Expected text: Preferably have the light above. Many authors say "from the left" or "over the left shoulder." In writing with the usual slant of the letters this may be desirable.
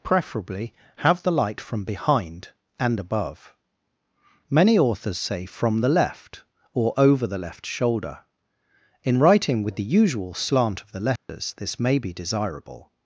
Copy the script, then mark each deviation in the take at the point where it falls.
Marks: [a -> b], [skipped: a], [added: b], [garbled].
Preferably have the light [added: from behind and] above. Many authors say "from the left" or "over the left shoulder." In writing with the usual slant of the letters this may be desirable.